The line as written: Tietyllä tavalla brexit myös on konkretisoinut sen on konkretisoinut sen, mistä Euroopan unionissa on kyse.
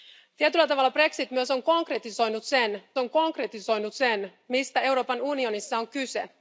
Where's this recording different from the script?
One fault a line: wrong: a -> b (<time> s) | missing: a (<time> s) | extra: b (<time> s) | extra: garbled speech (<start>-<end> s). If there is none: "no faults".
no faults